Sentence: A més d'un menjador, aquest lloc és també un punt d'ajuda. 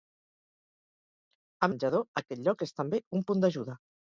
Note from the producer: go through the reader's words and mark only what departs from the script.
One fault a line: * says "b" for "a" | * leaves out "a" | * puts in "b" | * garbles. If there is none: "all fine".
* leaves out "més d'un"